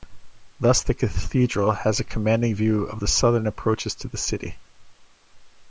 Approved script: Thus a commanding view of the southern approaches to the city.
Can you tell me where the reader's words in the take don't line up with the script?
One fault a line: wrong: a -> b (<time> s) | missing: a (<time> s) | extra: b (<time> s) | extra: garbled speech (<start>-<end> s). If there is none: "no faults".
extra: the cathedral has (0.8 s)